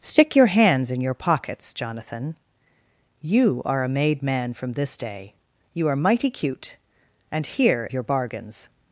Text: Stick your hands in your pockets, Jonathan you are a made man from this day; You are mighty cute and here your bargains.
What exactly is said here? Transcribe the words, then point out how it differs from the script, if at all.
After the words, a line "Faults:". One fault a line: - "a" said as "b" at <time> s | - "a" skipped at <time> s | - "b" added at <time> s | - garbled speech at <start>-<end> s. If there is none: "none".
Stick your hands in your pockets, Jonathan you are a made man from this day; You are mighty cute and here your bargains.
Faults:
none